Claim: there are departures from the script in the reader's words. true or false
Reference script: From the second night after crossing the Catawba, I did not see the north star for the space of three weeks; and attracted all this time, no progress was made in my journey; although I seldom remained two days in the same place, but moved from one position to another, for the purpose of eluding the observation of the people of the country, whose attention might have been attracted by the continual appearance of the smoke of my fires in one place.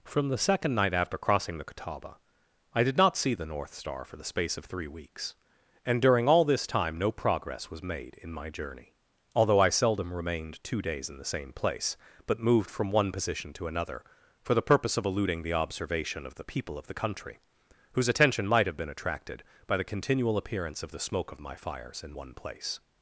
true